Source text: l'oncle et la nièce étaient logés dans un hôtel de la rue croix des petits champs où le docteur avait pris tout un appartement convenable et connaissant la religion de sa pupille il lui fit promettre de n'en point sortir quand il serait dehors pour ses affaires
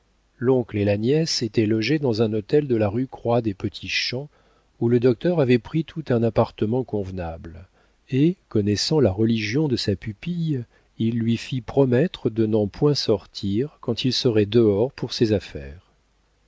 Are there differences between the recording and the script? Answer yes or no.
no